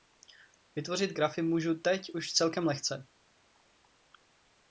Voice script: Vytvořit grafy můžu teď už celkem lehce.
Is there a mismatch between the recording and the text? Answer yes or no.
no